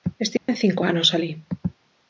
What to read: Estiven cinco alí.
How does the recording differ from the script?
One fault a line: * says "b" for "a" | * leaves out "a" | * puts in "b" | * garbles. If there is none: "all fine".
* puts in "anos"